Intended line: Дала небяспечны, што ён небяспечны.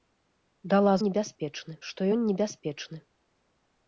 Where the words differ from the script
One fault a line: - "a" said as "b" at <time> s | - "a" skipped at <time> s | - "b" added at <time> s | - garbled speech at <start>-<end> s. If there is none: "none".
none